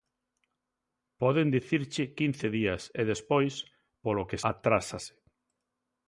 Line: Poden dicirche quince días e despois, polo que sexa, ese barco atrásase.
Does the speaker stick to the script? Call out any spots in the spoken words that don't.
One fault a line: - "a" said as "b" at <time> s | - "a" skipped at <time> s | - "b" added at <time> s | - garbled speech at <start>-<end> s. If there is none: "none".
- "sexa ese barco" skipped at 4.4 s